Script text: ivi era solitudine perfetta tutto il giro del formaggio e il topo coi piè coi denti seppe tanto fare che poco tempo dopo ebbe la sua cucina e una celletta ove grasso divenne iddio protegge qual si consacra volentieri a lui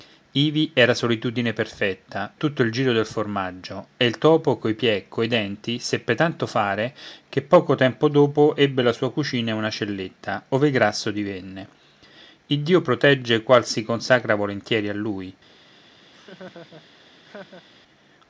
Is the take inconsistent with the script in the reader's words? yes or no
no